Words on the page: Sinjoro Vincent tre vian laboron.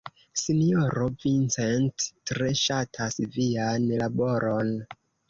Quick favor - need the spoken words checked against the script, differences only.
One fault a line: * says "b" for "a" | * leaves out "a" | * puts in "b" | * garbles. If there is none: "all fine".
* puts in "ŝatas"